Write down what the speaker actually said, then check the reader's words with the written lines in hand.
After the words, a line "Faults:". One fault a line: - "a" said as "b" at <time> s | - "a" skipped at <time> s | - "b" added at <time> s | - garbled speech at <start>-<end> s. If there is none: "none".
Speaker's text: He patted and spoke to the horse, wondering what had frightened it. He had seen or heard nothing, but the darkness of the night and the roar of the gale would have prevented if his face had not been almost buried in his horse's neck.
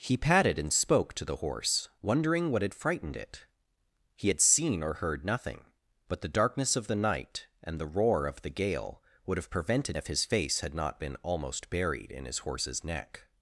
He patted and spoke to the horse, wondering what had frightened it. He had seen or heard nothing, but the darkness of the night and the roar of the gale would have prevented if his face had not been almost buried in his horse's neck.
Faults:
none